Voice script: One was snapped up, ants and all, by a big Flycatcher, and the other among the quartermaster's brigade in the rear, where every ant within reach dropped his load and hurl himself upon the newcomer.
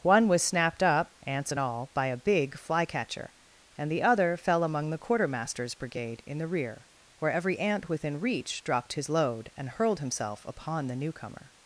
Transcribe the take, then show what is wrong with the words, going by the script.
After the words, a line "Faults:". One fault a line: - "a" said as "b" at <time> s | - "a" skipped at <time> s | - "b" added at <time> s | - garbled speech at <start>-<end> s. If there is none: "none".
One was snapped up, ants and all, by a big Flycatcher, and the other fell among the quartermaster's brigade in the rear, where every ant within reach dropped his load and hurled himself upon the newcomer.
Faults:
- "fell" added at 4.4 s
- "hurl" said as "hurled" at 9.7 s